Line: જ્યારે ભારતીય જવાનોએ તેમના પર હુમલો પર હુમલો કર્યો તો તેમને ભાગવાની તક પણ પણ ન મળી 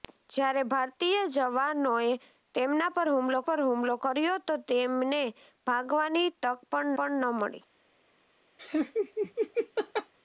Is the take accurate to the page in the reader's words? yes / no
yes